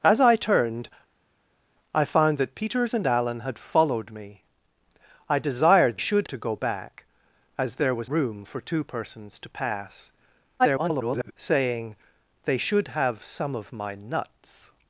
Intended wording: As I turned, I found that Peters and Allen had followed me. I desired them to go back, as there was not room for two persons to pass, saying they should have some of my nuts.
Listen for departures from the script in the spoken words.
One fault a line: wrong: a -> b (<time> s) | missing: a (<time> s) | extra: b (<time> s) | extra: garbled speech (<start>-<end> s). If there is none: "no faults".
wrong: them -> should (6.0 s)
missing: not (8.1 s)
extra: garbled speech (10.6-11.3 s)